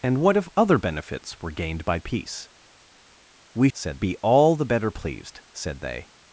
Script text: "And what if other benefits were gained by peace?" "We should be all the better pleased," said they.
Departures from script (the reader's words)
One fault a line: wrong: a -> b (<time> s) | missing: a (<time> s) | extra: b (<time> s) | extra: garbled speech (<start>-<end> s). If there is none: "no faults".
wrong: should -> said (3.7 s)